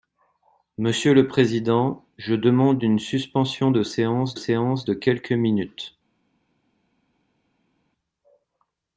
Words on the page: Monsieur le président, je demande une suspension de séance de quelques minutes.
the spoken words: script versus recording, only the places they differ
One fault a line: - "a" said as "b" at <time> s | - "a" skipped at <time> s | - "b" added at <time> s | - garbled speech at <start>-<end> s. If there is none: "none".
- "séance" added at 4.3 s